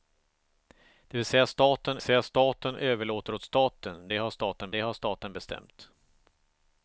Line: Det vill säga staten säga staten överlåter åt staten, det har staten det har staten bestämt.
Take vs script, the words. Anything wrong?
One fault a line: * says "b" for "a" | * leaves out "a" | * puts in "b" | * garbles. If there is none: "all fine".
all fine